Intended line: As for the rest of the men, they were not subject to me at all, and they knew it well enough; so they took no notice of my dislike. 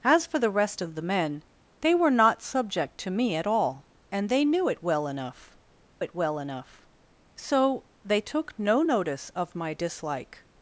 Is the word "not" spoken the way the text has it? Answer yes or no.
yes